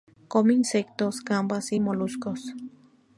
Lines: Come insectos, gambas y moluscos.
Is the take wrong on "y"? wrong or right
right